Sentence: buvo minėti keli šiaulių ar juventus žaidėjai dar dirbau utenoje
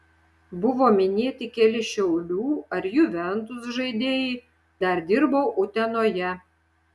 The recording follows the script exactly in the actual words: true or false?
true